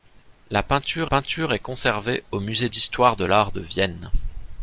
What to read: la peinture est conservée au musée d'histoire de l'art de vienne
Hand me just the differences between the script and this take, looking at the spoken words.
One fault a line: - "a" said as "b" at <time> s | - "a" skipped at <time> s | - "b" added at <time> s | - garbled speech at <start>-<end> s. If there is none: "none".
- "peinture" added at 1.0 s